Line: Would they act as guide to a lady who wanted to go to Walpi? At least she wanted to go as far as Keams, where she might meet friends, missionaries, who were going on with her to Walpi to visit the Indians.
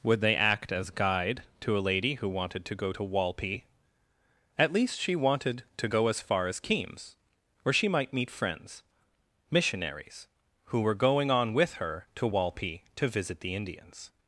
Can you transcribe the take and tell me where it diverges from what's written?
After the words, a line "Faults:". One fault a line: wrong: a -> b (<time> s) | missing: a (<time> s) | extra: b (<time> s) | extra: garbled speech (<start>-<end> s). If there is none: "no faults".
Would they act as guide to a lady who wanted to go to Walpi? At least she wanted to go as far as Keams, where she might meet friends, missionaries, who were going on with her to Walpi to visit the Indians.
Faults:
no faults